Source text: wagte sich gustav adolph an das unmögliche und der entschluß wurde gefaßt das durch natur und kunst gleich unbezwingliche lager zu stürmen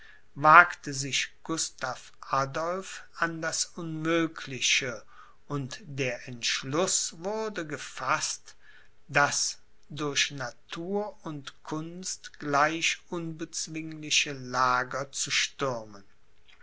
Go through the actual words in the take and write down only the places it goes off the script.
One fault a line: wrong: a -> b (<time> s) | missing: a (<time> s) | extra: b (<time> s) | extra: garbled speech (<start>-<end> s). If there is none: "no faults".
no faults